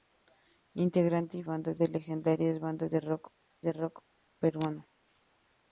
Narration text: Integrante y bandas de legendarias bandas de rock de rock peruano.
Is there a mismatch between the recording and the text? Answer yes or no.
no